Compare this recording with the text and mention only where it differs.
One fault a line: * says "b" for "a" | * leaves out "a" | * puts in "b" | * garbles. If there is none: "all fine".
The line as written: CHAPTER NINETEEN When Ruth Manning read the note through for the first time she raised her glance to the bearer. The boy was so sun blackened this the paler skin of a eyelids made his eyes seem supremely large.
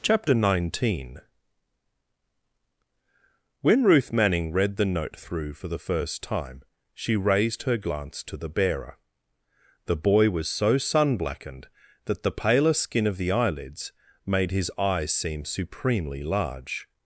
* says "that" for "this"
* says "the" for "a"